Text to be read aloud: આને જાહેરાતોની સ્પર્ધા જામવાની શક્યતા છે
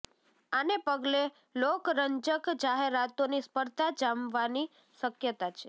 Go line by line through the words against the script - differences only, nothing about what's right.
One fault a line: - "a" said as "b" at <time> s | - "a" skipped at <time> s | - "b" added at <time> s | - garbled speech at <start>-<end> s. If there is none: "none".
- "પગલે લોકરંજક" added at 0.8 s